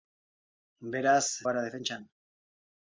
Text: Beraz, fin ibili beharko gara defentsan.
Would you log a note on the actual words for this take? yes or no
yes